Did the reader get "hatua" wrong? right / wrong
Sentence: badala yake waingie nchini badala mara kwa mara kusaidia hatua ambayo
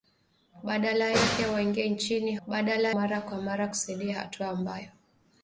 right